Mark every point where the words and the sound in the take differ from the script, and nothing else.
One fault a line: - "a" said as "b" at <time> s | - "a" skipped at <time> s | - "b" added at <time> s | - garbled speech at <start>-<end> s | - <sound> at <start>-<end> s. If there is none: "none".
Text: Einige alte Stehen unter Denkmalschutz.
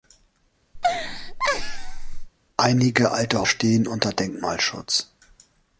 - laugh at 0.7-2.3 s